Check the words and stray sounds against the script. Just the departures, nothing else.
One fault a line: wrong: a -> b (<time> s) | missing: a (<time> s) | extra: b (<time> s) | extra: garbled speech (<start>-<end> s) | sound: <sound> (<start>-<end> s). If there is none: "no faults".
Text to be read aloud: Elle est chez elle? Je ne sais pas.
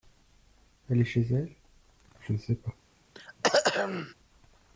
sound: throat clearing (3.1-4.1 s)